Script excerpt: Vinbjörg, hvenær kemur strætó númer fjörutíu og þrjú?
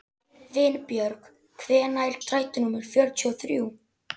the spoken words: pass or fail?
fail